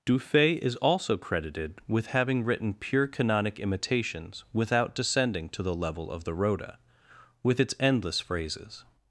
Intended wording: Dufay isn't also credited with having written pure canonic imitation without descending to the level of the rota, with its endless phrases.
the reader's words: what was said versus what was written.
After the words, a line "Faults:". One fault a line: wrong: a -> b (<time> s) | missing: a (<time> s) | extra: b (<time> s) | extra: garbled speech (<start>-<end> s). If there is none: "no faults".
Dufay is also credited with having written pure canonic imitations without descending to the level of the rota, with its endless phrases.
Faults:
wrong: isn't -> is (0.6 s)
wrong: imitation -> imitations (3.6 s)